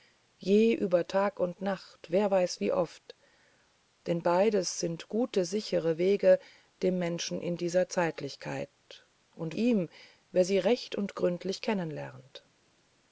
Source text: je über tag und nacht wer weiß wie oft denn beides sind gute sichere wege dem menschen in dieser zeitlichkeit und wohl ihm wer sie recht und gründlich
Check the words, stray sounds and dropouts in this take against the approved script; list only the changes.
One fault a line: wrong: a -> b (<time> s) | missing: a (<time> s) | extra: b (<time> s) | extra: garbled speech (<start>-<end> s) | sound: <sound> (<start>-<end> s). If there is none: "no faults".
missing: wohl (9.6 s)